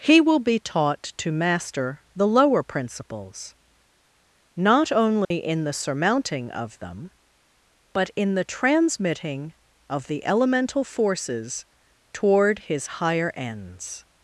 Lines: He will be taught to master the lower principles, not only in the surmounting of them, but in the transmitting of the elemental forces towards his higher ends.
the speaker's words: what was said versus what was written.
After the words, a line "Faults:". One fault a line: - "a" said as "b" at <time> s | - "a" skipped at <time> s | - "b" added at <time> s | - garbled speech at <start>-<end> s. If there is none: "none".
He will be taught to master the lower principles, not only in the surmounting of them, but in the transmitting of the elemental forces toward his higher ends.
Faults:
- "towards" said as "toward" at 12.1 s